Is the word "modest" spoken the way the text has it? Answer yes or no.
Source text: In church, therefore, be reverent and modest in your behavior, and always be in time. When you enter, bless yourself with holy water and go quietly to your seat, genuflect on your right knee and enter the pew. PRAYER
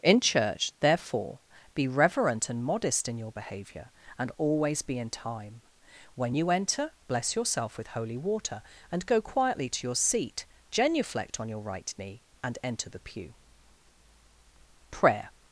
yes